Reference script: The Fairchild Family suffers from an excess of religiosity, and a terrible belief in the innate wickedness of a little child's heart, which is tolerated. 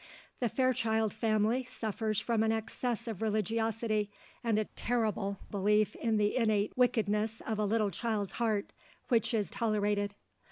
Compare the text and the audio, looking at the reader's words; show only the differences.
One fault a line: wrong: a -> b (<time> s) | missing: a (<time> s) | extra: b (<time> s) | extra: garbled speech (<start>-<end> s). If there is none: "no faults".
no faults